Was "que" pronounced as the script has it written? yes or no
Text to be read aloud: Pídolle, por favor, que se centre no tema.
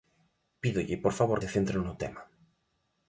no